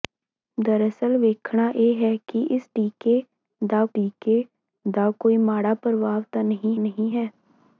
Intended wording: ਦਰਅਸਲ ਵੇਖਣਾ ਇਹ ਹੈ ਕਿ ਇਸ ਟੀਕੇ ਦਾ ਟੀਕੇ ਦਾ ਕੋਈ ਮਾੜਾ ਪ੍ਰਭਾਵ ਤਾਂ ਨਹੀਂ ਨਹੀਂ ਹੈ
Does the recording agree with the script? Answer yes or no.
yes